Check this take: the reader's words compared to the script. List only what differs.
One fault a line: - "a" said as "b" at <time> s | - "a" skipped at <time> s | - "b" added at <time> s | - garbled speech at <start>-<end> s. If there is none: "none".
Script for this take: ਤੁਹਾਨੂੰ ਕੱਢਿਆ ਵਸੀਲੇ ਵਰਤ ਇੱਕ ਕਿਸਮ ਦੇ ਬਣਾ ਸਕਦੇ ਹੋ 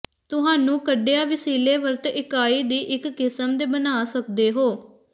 - "ਇਕਾਈ ਦੀ" added at 2.1 s